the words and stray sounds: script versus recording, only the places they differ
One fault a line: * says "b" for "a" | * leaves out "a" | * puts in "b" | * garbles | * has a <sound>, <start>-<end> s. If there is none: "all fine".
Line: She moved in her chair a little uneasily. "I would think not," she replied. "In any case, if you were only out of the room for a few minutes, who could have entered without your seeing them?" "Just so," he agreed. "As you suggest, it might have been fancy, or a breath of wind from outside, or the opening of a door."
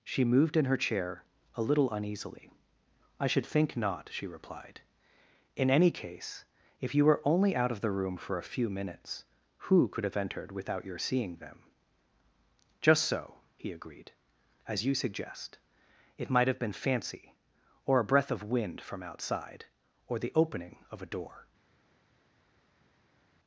* says "should" for "would"